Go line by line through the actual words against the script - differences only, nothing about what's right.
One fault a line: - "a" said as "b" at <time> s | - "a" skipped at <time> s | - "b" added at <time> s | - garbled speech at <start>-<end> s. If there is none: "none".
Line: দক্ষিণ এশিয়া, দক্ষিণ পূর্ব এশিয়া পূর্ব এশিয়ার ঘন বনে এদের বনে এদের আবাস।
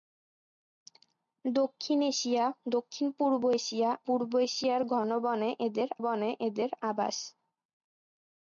none